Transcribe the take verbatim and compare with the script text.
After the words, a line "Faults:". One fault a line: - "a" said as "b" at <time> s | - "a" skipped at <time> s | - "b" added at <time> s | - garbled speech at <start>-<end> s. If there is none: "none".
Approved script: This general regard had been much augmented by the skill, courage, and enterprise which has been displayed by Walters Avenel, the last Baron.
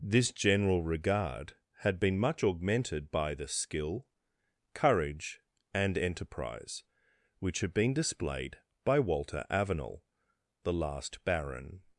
This general regard had been much augmented by the skill, courage, and enterprise which had been displayed by Walter Avenel, the last Baron.
Faults:
- "has" said as "had" at 7.6 s
- "Walters" said as "Walter" at 9.0 s